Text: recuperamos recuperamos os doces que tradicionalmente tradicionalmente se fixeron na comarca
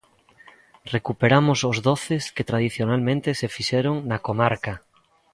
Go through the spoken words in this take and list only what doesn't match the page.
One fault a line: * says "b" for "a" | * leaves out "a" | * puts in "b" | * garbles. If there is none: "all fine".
* leaves out "recuperamos"
* leaves out "tradicionalmente"